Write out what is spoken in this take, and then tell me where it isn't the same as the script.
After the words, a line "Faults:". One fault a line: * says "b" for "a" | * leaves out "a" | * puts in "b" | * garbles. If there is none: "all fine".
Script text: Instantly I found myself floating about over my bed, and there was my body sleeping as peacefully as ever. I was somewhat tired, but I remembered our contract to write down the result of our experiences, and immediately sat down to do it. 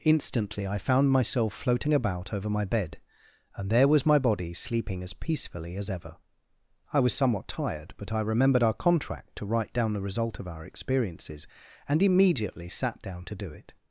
Instantly I found myself floating about over my bed, and there was my body sleeping as peacefully as ever. I was somewhat tired, but I remembered our contract to write down the result of our experiences, and immediately sat down to do it.
Faults:
all fine